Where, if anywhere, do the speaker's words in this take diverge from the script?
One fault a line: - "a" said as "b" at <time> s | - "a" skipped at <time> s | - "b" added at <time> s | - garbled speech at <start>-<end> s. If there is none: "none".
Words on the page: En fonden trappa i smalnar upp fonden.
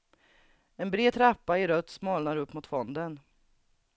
- "fonden" said as "bred" at 0.9 s
- "rött" added at 1.7 s
- "mot" added at 2.5 s